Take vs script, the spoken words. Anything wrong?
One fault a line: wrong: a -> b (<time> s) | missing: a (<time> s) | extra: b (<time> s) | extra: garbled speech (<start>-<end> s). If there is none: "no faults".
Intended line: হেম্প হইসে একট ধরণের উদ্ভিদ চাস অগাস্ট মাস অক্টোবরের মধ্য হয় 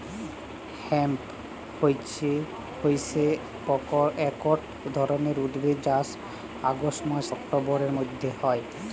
no faults